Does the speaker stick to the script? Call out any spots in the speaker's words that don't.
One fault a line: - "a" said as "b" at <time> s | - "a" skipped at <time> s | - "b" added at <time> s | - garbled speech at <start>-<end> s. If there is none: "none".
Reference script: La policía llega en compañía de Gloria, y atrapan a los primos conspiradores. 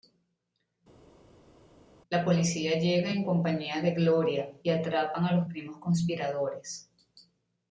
none